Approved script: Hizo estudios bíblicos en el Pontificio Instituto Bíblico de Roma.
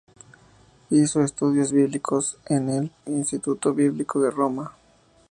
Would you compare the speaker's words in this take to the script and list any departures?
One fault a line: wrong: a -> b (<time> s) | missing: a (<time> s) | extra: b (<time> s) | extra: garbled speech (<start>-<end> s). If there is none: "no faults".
missing: Pontificio (2.9 s)